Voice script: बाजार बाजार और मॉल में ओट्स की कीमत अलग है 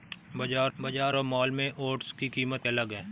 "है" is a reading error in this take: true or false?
false